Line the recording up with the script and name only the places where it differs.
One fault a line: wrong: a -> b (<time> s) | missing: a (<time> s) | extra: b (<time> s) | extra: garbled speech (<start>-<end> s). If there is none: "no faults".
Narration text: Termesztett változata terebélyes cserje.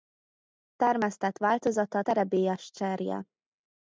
no faults